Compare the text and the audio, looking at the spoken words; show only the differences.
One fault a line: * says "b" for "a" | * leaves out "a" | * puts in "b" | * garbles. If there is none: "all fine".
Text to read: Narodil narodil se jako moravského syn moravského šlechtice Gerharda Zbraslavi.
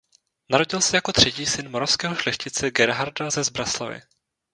* leaves out "narodil"
* says "třetí" for "moravského"
* puts in "ze"